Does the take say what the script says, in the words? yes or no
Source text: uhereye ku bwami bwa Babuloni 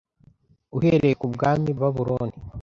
no